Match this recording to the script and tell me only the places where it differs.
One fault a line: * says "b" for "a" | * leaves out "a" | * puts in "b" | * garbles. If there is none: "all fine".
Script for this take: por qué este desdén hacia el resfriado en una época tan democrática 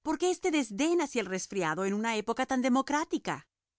all fine